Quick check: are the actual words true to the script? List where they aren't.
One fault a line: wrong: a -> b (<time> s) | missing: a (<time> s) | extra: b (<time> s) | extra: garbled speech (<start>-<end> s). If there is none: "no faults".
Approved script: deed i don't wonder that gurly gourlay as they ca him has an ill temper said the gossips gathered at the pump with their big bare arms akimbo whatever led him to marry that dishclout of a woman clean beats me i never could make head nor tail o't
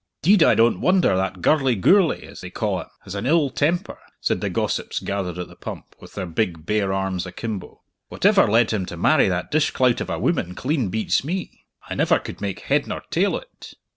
no faults